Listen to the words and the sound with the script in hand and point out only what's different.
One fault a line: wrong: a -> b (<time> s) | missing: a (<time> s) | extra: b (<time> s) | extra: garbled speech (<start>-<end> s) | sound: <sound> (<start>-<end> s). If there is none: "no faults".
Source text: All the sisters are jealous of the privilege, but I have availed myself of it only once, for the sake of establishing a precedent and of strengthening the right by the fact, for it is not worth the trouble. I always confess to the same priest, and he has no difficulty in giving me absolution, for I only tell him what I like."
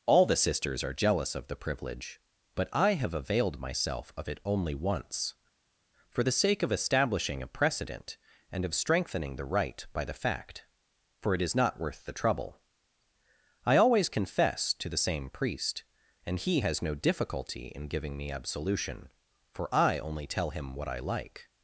no faults